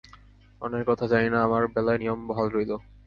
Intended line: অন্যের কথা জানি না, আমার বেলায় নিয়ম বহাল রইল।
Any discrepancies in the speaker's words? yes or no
no